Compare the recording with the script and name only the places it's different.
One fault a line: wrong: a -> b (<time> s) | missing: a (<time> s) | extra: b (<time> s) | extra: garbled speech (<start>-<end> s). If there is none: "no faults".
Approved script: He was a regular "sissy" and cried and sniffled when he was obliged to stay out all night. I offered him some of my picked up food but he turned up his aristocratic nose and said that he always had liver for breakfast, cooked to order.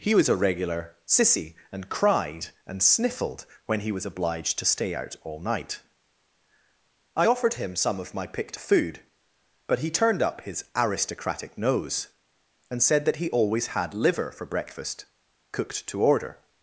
missing: up (8.6 s)